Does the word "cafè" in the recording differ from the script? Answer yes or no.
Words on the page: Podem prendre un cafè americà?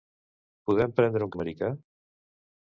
yes